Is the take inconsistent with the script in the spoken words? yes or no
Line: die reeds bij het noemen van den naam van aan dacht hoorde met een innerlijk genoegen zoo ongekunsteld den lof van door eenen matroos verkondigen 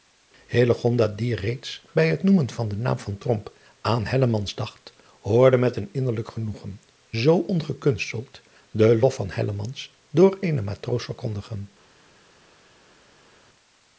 no